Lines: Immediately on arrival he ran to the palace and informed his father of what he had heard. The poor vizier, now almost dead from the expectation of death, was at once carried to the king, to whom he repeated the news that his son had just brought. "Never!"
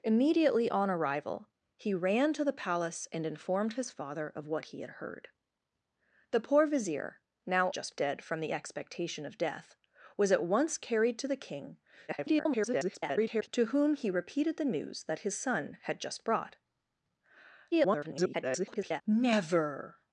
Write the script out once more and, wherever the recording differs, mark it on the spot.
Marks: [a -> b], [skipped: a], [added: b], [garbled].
Immediately on arrival he ran to the palace and informed his father of what he had heard. The poor vizier, now [almost -> just] dead from the expectation of death, was at once carried to the king, [garbled] to whom he repeated the news that his son had just brought. [garbled] "Never!"